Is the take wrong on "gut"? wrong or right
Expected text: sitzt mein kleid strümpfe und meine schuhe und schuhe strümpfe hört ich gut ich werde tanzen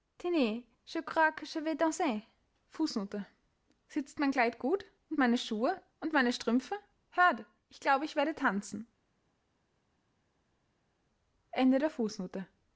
wrong